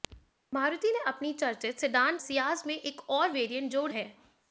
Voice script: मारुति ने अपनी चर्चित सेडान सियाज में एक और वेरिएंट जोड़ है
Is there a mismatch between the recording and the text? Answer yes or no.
no